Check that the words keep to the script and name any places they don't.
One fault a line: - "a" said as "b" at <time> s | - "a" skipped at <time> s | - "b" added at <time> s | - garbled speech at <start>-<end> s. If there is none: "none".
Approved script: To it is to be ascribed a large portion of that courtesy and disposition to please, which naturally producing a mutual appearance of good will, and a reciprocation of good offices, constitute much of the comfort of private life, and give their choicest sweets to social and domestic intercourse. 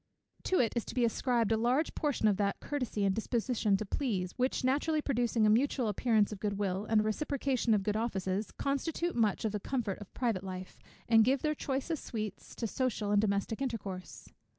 none